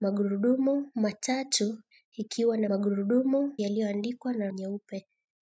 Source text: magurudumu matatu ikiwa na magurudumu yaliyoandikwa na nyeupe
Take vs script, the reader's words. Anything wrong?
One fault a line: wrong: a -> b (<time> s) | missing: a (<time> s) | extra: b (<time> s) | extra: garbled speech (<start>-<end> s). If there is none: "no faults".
no faults